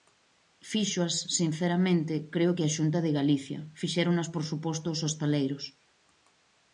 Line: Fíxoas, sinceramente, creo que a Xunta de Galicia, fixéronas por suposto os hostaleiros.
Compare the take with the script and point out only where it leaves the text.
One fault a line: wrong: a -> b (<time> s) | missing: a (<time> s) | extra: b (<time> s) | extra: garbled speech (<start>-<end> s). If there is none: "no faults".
no faults